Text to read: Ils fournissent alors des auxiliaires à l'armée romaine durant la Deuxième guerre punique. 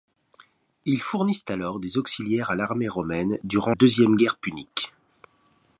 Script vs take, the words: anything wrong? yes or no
yes